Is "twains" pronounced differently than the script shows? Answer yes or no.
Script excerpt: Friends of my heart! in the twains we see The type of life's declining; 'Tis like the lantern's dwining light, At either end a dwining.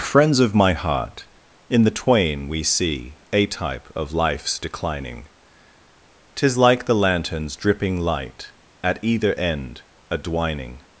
yes